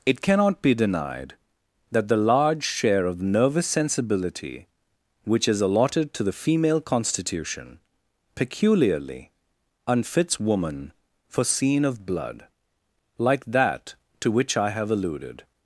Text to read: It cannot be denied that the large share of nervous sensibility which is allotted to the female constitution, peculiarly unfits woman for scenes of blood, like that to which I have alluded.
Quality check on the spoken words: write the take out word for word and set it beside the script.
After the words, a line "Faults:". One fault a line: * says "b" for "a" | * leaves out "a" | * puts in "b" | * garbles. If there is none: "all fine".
It cannot be denied that the large share of nervous sensibility which is allotted to the female constitution, peculiarly unfits woman for scene of blood, like that to which I have alluded.
Faults:
* says "scene" for "scenes"